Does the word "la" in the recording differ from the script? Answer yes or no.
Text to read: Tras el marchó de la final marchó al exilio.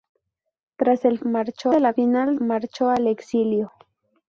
no